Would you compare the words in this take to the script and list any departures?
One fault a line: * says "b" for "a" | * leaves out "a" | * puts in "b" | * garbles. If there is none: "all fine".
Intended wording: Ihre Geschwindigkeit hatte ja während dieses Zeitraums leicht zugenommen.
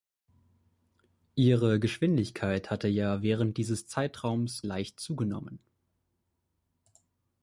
all fine